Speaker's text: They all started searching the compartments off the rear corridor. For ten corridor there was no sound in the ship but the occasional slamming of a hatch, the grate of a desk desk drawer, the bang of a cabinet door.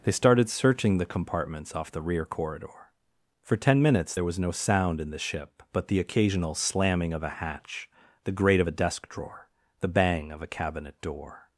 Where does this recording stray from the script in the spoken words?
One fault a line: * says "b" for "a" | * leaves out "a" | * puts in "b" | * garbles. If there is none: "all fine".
* leaves out "all"
* says "minutes" for "corridor"
* leaves out "desk"